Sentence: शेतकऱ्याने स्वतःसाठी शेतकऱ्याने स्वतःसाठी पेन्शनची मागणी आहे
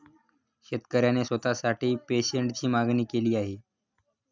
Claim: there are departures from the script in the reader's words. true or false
true